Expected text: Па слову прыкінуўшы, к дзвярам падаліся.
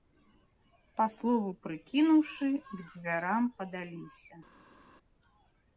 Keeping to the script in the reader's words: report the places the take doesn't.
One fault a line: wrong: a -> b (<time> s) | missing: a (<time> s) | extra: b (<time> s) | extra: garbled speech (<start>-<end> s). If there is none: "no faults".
no faults